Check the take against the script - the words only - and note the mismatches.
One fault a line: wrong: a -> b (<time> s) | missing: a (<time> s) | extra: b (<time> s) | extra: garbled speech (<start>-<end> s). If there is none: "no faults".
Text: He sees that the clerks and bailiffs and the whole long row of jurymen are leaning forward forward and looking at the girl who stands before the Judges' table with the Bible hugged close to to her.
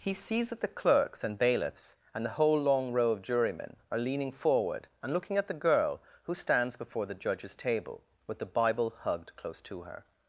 missing: forward (4.9 s)
missing: to (9.8 s)